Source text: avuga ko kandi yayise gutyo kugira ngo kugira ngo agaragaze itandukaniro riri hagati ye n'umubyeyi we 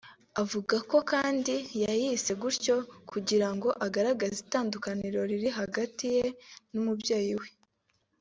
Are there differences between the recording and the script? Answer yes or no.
yes